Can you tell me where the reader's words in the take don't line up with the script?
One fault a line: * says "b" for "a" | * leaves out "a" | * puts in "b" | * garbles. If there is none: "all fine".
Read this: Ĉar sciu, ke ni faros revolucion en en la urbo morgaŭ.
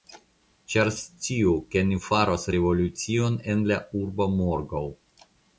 * leaves out "en"